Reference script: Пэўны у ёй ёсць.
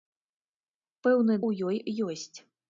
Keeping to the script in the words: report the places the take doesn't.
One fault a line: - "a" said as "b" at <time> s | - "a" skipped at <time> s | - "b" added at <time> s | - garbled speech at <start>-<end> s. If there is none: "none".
none